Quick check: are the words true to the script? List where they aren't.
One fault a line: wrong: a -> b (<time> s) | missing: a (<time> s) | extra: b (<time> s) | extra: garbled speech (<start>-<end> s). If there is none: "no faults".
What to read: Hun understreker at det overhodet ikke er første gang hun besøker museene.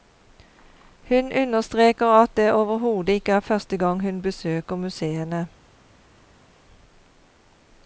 no faults